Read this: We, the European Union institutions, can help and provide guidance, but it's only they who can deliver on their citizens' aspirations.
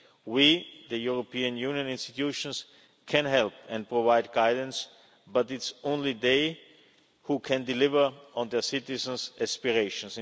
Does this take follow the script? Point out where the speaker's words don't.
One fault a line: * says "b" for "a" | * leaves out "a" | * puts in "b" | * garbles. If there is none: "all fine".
all fine